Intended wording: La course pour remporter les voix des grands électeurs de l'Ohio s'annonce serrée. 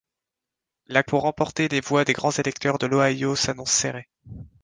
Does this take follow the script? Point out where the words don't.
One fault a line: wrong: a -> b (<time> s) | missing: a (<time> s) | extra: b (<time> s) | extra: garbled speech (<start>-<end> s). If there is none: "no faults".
missing: course (1.0 s)